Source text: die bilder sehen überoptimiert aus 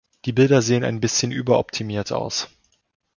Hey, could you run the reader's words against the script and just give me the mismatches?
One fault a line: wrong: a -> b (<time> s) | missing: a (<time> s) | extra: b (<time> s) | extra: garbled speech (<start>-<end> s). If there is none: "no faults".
extra: ein bisschen (0.8 s)